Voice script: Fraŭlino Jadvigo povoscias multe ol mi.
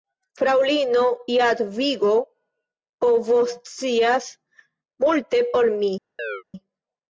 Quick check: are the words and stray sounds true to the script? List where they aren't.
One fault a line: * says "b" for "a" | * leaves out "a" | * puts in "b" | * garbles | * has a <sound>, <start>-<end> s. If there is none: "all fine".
* has a chirp, 6.2-6.4 s